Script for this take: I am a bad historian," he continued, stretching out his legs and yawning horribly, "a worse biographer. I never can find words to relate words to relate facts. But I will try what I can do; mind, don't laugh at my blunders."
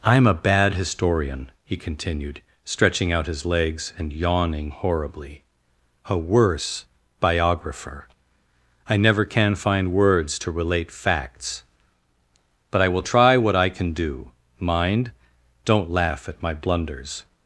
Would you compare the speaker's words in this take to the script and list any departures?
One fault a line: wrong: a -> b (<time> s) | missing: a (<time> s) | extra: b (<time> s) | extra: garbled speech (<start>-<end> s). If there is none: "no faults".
missing: words to relate (10.9 s)